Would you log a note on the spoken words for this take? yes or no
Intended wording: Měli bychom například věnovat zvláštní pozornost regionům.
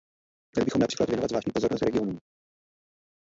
no